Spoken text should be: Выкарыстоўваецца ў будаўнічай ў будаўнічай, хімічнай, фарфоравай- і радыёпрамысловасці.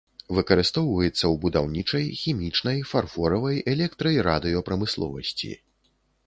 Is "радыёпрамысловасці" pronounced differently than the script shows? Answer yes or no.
no